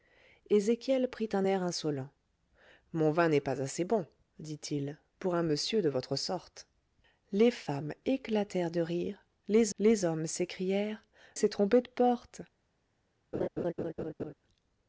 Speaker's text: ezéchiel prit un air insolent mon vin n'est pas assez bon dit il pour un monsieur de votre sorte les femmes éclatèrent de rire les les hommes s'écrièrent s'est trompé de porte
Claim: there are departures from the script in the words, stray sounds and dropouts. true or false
true